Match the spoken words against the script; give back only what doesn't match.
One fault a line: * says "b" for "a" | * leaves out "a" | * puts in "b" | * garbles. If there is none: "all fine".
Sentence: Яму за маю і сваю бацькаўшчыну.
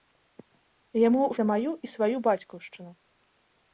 all fine